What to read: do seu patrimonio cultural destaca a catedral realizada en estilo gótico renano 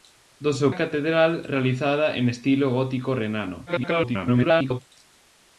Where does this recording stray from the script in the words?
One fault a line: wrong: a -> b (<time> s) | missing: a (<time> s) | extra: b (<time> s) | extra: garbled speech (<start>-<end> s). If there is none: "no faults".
missing: patrimonio cultural destaca (0.7 s)
extra: garbled speech (3.7-4.8 s)